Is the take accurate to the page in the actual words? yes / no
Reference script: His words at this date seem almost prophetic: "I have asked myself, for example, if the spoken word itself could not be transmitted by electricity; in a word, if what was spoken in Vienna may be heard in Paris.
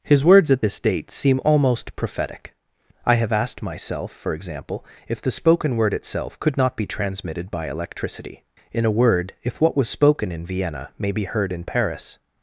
yes